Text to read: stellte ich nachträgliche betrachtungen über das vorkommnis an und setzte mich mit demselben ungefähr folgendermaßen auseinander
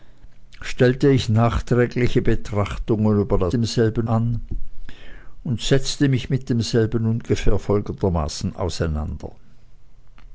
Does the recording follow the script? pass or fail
fail